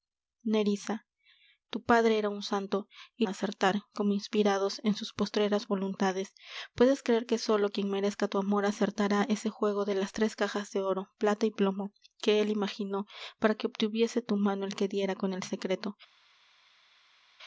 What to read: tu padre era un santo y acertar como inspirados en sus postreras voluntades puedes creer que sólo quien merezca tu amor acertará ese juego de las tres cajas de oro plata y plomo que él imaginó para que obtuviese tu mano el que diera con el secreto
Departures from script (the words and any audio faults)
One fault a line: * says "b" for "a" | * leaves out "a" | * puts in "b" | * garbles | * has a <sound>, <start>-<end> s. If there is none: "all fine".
all fine